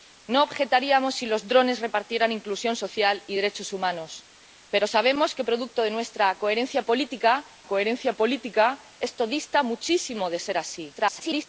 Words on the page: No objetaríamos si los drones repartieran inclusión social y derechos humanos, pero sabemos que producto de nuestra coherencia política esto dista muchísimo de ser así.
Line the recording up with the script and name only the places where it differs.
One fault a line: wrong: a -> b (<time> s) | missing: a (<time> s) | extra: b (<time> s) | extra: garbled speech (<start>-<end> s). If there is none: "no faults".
extra: coherencia política (7.7 s)
extra: garbled speech (10.9-11.5 s)